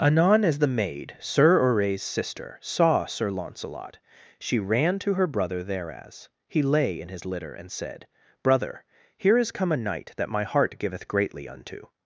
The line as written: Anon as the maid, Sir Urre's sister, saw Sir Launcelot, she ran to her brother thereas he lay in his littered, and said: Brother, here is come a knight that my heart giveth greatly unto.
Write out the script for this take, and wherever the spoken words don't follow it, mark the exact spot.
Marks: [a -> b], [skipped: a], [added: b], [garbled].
Anon as the maid, Sir Urre's sister, saw Sir Launcelot, she ran to her brother thereas he lay in his [littered, -> litter] and said: Brother, here is come a knight that my heart giveth greatly unto.